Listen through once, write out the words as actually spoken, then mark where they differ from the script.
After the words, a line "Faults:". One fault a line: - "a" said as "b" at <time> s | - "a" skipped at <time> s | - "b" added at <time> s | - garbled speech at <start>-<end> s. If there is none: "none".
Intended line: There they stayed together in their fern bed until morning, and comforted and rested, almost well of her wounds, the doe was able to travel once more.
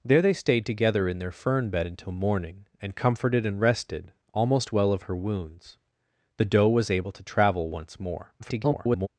There they stayed together in their fern bed until morning, and comforted and rested, almost well of her wounds, the doe was able to travel once more. [garbled]
Faults:
- garbled speech at 8.4-9.1 s